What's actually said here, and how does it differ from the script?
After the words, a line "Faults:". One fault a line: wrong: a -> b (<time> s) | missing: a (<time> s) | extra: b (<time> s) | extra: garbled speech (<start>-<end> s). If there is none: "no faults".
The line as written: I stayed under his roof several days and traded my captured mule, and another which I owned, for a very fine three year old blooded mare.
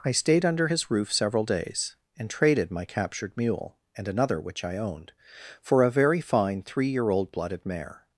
I stayed under his roof several days and traded my captured mule, and another which I owned, for a very fine three year old blooded mare.
Faults:
no faults